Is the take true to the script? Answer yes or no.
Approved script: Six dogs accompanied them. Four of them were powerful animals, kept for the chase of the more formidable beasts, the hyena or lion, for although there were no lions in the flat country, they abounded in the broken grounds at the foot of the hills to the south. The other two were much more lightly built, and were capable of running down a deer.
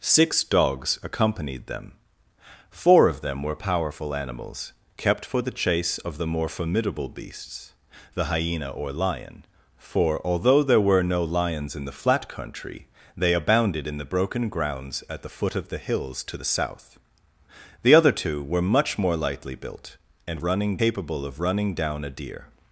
no